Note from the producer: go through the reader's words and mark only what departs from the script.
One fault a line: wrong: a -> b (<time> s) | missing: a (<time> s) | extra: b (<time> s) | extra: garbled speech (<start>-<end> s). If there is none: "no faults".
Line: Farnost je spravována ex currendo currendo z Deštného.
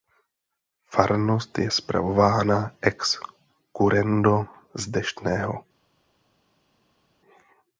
missing: currendo (4.5 s)